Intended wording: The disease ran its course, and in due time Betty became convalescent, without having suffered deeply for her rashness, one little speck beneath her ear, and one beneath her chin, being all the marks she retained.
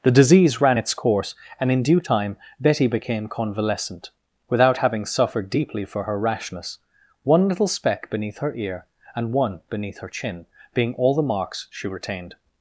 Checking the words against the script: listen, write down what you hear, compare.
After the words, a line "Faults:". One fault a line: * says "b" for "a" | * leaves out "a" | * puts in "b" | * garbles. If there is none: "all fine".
The disease ran its course, and in due time Betty became convalescent, without having suffered deeply for her rashness, one little speck beneath her ear, and one beneath her chin, being all the marks she retained.
Faults:
all fine